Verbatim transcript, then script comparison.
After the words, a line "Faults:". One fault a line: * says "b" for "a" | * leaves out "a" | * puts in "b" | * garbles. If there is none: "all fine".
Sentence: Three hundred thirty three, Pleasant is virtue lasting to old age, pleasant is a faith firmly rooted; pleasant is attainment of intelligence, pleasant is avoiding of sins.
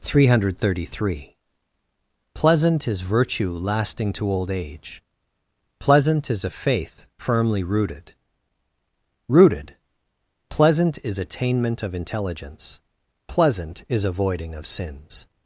Three hundred thirty three, Pleasant is virtue lasting to old age, pleasant is a faith firmly rooted rooted; pleasant is attainment of intelligence, pleasant is avoiding of sins.
Faults:
* puts in "rooted"